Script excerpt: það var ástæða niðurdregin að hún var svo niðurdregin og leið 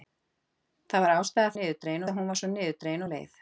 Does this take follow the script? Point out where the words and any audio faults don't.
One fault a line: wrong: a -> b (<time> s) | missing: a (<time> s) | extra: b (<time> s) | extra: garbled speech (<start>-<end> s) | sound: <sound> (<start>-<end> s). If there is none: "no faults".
no faults